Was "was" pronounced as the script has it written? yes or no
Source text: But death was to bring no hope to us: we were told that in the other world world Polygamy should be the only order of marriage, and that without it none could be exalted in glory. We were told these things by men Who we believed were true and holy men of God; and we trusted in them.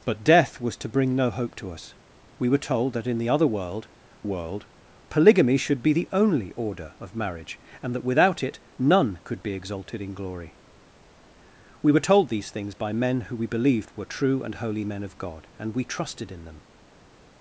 yes